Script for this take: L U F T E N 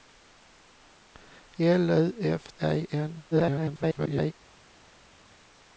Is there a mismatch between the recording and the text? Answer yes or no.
yes